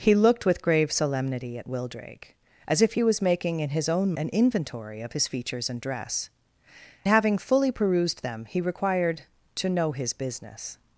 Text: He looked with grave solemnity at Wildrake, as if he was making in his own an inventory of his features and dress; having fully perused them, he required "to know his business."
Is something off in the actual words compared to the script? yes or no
no